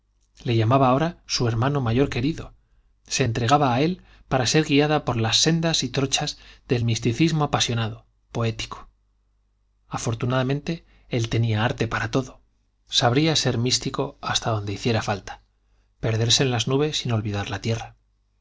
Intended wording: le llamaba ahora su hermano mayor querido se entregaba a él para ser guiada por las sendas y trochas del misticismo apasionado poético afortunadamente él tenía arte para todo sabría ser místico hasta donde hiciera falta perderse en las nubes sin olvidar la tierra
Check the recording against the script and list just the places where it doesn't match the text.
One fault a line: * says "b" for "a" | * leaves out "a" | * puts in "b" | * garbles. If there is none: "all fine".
all fine